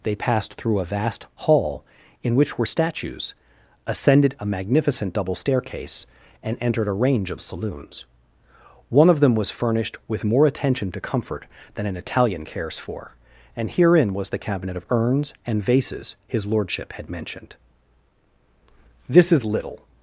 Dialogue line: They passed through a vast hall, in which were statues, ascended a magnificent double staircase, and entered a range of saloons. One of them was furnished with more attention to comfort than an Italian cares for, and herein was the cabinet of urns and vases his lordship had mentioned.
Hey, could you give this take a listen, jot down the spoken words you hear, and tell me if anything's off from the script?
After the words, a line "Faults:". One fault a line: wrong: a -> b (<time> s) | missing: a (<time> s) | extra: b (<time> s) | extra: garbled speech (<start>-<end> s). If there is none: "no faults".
They passed through a vast hall, in which were statues, ascended a magnificent double staircase, and entered a range of saloons. One of them was furnished with more attention to comfort than an Italian cares for, and herein was the cabinet of urns and vases his lordship had mentioned. 'This is little
Faults:
extra: This is little (19.1 s)